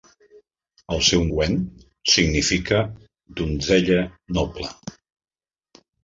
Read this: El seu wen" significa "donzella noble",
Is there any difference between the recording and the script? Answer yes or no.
no